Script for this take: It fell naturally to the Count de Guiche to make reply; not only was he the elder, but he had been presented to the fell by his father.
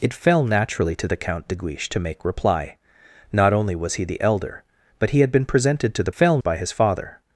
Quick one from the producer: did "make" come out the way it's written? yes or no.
yes